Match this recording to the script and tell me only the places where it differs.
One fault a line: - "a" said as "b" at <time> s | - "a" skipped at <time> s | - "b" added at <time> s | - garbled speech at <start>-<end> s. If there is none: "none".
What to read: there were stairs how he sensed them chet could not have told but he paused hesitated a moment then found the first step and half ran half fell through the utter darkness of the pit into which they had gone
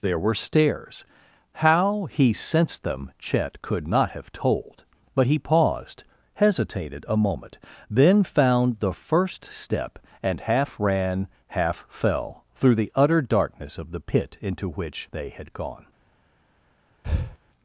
none